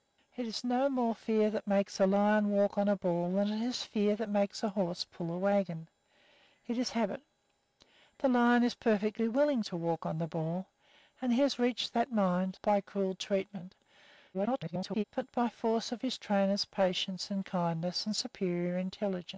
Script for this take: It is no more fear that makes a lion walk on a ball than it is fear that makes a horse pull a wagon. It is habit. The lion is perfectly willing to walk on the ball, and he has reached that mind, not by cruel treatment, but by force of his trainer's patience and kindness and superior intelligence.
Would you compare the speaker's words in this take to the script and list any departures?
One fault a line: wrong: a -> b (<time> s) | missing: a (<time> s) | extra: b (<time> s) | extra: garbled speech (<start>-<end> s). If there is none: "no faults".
missing: not (12.6 s)
extra: garbled speech (14.3-15.0 s)